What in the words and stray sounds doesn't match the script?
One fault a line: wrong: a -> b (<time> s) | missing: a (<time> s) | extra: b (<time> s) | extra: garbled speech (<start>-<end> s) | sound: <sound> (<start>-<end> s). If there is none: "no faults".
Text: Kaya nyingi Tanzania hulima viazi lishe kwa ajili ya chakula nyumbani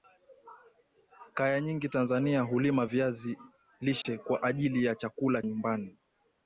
sound: dropout (4.0-4.1 s)